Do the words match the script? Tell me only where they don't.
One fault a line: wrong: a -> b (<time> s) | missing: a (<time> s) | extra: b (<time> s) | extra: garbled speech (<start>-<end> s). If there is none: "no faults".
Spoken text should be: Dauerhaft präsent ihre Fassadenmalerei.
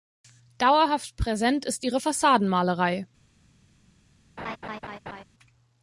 extra: ist (1.6 s)